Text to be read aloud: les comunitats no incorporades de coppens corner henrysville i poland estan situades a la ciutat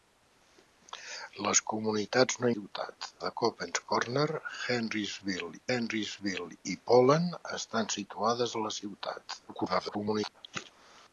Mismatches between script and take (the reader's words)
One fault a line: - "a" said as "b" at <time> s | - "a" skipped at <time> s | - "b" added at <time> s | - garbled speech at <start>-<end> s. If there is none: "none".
- "incorporades" said as "ciutat" at 2.5 s
- "henrysville" added at 5.8 s
- garbled speech at 9.5-10.4 s